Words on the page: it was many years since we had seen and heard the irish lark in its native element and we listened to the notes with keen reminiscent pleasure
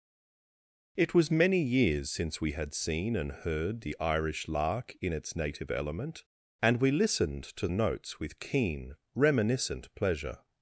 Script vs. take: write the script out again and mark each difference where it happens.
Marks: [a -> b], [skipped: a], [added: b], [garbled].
it was many years since we had seen and heard the irish lark in its native element and we listened to [skipped: the] notes with keen reminiscent pleasure